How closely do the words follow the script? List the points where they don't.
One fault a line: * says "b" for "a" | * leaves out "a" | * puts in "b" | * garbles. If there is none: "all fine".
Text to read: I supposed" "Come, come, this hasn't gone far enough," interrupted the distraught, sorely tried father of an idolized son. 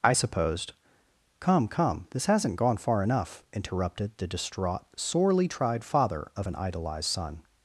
all fine